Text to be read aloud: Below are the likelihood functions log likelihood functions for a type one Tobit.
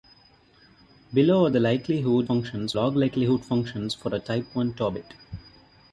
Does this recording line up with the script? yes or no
yes